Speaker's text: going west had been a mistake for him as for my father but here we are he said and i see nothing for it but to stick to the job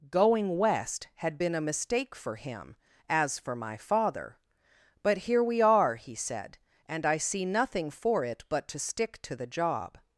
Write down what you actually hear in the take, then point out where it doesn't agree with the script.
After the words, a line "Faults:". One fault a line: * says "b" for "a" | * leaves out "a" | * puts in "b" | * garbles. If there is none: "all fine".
going west had been a mistake for him as for my father but here we are he said and i see nothing for it but to stick to the job
Faults:
all fine